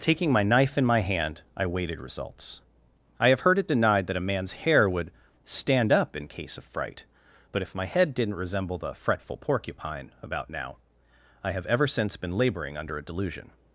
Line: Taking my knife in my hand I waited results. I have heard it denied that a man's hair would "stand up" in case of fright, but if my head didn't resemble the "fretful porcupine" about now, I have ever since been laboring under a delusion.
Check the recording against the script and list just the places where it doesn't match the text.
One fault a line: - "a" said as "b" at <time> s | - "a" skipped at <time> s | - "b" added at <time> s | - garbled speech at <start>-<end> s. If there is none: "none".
none